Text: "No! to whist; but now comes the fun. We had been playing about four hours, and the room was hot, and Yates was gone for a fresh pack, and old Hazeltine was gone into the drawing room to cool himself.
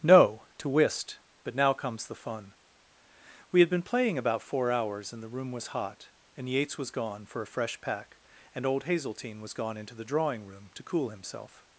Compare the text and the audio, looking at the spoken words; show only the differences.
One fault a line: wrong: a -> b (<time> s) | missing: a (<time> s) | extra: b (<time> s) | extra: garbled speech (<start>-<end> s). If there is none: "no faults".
no faults